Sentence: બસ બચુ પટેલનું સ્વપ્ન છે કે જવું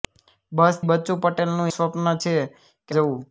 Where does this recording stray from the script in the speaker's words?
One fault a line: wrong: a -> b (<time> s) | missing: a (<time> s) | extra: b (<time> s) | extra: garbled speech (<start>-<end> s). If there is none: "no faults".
no faults